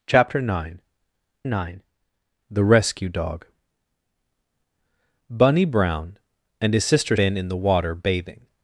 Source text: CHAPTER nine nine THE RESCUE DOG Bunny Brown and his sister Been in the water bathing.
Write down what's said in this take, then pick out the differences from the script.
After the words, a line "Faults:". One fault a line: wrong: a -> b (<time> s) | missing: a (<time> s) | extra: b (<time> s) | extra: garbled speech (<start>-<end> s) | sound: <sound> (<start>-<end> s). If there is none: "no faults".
CHAPTER nine nine THE RESCUE DOG Bunny Brown and his sister Been in the water bathing.
Faults:
no faults